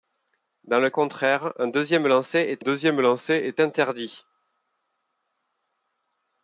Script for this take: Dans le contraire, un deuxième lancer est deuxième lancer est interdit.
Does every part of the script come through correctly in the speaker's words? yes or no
yes